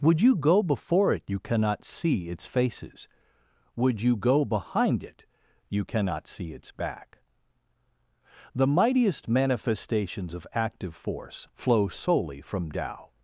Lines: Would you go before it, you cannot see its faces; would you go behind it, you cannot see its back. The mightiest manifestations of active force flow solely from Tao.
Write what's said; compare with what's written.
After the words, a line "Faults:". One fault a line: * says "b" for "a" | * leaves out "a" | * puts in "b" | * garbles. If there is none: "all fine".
Would you go before it, you cannot see its faces; would you go behind it, you cannot see its back. The mightiest manifestations of active force flow solely from Tao.
Faults:
all fine